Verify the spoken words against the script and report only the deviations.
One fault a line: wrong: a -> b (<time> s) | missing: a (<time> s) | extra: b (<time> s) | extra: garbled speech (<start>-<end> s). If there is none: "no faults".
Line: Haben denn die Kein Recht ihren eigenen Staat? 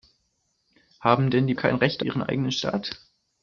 no faults